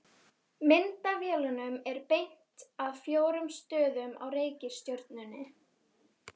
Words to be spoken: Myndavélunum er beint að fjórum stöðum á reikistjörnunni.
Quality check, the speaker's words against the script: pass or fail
pass